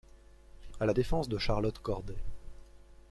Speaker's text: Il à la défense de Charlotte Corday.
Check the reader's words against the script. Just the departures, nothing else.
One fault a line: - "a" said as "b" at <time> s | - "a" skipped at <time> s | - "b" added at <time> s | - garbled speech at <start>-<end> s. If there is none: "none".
none